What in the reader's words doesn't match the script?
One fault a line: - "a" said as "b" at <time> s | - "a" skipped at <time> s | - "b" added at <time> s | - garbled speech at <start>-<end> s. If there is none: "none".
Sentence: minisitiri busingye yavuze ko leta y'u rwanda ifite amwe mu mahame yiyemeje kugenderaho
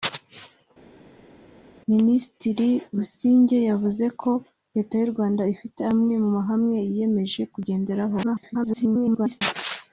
- garbled speech at 8.2-9.4 s